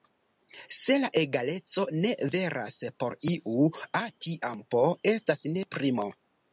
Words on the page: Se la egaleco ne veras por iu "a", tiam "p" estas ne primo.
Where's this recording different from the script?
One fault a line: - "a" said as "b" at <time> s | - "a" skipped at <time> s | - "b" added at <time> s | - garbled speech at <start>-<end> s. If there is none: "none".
none